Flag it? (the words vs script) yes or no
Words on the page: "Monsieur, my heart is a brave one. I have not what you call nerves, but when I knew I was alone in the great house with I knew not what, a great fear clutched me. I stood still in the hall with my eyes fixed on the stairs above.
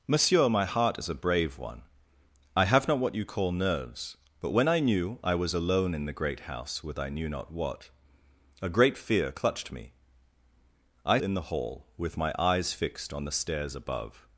yes